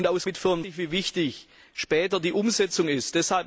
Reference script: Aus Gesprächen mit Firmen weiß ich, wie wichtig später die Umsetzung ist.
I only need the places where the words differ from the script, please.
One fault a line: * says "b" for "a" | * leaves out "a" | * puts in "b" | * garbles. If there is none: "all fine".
* leaves out "Gesprächen"
* leaves out "weiß"